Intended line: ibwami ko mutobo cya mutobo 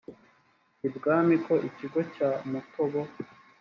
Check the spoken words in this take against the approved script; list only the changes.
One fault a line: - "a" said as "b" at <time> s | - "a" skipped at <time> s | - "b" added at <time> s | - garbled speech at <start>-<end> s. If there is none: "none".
- "mutobo" said as "ikigo" at 1.7 s